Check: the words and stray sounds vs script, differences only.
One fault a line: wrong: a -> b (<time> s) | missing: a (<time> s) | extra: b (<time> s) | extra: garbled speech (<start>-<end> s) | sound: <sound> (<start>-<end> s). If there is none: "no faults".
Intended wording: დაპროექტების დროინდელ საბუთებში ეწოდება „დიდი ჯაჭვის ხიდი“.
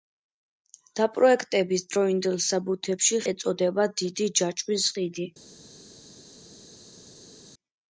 no faults